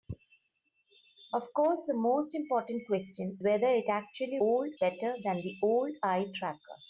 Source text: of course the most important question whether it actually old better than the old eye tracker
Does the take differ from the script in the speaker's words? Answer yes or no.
no